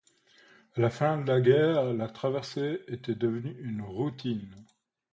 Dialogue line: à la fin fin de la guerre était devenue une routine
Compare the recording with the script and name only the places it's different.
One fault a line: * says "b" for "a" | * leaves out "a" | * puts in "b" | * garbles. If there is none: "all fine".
* leaves out "fin"
* puts in "la traversée"